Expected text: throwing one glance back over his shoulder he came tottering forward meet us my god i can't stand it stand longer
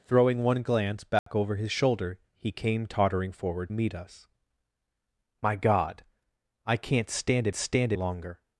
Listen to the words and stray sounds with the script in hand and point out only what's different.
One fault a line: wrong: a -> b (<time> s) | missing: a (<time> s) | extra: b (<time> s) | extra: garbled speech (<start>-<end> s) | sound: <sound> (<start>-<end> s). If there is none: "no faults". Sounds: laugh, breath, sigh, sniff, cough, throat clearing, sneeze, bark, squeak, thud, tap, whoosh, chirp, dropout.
sound: dropout (1.2-1.3 s)